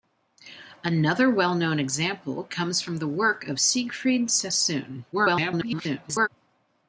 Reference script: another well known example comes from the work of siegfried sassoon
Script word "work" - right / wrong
right